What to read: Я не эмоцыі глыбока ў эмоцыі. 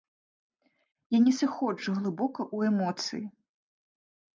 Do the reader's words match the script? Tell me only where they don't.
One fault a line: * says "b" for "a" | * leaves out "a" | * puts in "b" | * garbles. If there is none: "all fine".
* says "сыходжу" for "эмоцыі"